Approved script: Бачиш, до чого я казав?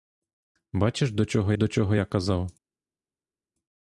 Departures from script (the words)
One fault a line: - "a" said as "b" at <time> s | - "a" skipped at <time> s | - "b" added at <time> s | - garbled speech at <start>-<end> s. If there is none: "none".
- "до чого" added at 1.5 s